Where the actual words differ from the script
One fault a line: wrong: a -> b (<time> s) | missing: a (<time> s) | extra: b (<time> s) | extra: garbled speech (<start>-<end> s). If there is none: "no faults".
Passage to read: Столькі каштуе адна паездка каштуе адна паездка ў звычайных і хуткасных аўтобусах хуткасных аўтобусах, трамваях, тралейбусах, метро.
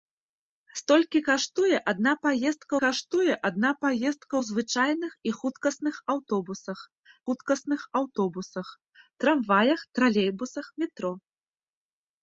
no faults